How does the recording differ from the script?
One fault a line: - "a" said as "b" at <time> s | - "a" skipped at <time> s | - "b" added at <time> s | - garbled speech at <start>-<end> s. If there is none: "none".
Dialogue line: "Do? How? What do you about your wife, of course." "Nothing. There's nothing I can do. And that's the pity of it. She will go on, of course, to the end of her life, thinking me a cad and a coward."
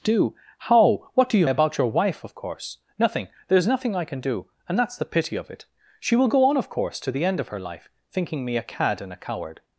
none